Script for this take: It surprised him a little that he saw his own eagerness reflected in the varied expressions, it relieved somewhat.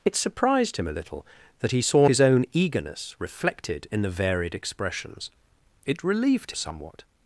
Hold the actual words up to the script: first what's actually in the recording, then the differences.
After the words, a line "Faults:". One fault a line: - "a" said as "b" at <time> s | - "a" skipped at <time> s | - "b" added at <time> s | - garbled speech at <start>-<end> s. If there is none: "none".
It surprised him a little that he saw his own eagerness reflected in the varied expressions, it relieved somewhat.
Faults:
none